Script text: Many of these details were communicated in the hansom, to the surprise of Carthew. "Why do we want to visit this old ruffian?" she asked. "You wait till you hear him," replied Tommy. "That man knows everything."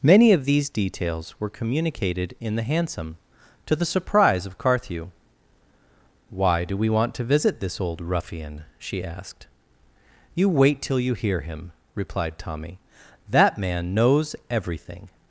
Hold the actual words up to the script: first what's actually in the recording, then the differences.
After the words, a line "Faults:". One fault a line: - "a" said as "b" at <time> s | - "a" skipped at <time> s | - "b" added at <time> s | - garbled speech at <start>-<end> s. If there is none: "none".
Many of these details were communicated in the hansom, to the surprise of Carthew. "Why do we want to visit this old ruffian?" she asked. "You wait till you hear him," replied Tommy. "That man knows everything."
Faults:
none